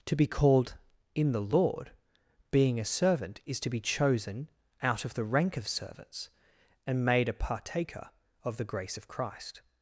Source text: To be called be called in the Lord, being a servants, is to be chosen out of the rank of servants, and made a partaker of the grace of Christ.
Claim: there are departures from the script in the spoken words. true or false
true